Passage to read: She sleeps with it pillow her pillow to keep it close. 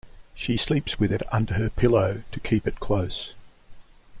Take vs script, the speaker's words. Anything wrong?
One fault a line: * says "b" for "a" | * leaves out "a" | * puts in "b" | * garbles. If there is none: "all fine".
* says "under" for "pillow"